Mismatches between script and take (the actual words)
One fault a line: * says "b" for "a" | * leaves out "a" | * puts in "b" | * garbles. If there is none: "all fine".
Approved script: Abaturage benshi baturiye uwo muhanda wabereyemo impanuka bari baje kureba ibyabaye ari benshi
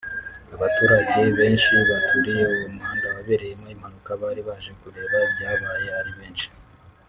all fine